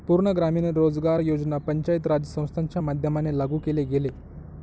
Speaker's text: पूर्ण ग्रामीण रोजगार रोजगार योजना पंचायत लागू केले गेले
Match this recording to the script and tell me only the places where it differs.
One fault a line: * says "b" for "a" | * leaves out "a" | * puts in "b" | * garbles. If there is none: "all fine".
* leaves out "रोजगार"
* puts in "राज संस्थांच्या माध्यमाने"